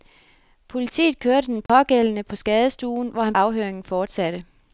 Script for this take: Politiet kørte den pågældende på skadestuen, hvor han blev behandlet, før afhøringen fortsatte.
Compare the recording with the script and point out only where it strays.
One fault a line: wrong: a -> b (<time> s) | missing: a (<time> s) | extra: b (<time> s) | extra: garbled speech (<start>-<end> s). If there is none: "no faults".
missing: blev behandlet før (3.4 s)